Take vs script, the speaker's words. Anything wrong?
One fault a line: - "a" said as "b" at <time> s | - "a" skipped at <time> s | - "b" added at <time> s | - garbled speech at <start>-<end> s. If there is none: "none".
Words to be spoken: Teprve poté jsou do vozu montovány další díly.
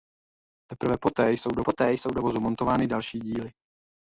- "poté jsou do" added at 1.6 s